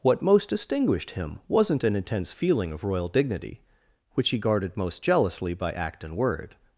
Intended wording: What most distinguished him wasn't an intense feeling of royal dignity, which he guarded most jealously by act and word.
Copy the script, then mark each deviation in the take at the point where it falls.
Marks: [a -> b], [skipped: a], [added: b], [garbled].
What most distinguished him wasn't an intense feeling of royal dignity, which he guarded most jealously by act and word.